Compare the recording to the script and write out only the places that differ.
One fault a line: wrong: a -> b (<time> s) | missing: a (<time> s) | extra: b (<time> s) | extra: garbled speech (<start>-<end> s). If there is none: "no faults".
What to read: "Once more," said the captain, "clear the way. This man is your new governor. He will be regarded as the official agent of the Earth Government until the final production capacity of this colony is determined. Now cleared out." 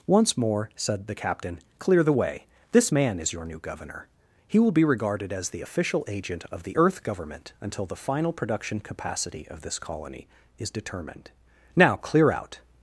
wrong: cleared -> clear (12.0 s)